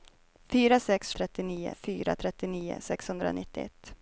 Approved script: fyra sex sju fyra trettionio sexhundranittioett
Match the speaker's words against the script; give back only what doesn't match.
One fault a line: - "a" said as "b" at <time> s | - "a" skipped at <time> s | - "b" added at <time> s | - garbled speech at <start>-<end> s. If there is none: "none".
- "sju" said as "trettionio" at 1.1 s